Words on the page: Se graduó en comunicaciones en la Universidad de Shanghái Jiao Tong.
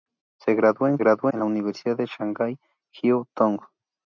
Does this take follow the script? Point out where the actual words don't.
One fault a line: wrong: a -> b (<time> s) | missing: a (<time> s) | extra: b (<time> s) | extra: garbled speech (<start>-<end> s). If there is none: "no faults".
wrong: comunicaciones -> graduó (1.0 s)